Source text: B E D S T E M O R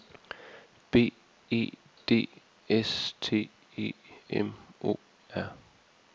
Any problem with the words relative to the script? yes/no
no